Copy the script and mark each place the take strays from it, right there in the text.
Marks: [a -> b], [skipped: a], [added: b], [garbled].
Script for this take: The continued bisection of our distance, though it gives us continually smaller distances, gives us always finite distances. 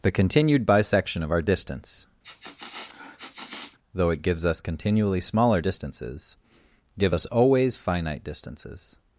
The continued bisection of our distance, though it gives us continually smaller distances, [gives -> give] us always finite distances.